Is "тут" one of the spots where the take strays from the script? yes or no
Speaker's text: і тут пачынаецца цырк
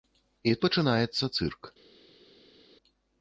yes